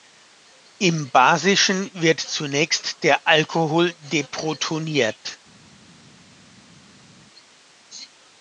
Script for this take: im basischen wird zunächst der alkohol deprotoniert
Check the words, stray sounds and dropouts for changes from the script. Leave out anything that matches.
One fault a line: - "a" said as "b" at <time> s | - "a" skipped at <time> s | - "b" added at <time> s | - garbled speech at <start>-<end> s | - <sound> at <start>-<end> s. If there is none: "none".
none